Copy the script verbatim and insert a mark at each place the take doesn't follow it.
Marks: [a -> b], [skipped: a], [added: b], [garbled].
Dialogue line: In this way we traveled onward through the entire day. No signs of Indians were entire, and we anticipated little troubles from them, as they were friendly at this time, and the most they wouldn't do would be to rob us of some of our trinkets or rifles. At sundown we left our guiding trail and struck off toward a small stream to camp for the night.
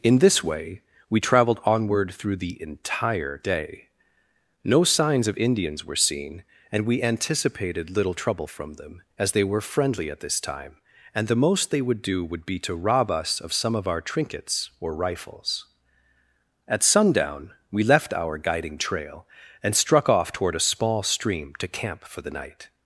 In this way we traveled onward through the entire day. No signs of Indians were [entire, -> seen] and we anticipated little [troubles -> trouble] from them, as they were friendly at this time, and the most they [wouldn't -> would] do would be to rob us of some of our trinkets or rifles. At sundown we left our guiding trail and struck off toward a small stream to camp for the night.